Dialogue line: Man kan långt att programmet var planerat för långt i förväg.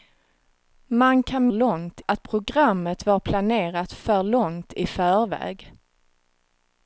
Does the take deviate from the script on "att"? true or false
false